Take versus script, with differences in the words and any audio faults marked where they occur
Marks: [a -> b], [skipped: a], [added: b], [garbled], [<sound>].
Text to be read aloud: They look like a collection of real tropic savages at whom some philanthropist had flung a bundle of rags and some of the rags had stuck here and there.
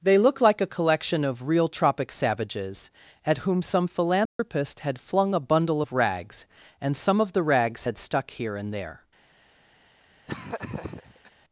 They look like a collection of real tropic savages at whom some philanthropist [dropout] had flung a bundle of rags and some of the rags had stuck here and there. [laugh]